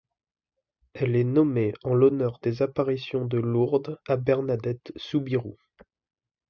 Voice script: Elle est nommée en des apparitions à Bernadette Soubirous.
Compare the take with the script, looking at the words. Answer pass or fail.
fail